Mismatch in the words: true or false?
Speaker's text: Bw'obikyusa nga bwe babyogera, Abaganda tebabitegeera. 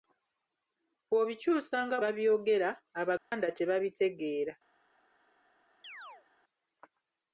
true